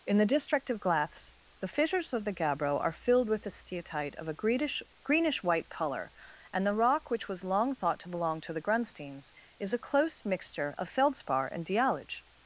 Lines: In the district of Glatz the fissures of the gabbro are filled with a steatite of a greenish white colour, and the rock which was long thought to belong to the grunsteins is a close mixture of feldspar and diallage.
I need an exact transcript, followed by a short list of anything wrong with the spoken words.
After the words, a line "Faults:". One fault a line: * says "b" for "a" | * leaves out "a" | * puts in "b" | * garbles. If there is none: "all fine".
In the district of Glatz the fissures of the gabbro are filled with a steatite of a greenish greenish white colour, and the rock which was long thought to belong to the grunsteins is a close mixture of feldspar and diallage.
Faults:
* puts in "greenish"